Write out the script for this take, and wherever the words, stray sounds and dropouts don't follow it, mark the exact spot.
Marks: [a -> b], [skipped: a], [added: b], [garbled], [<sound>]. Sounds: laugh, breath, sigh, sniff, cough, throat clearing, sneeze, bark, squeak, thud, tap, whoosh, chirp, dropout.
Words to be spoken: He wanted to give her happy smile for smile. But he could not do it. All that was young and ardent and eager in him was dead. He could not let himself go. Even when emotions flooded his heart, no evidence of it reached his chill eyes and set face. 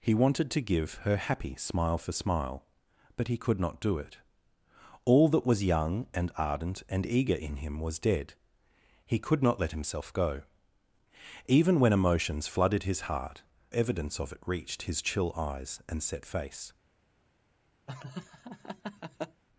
He wanted to give her happy smile for smile. But he could not do it. All that was young and ardent and eager in him was dead. He could not let himself go. Even when emotions flooded his heart, [skipped: no] evidence of it reached his chill eyes and set face. [laugh]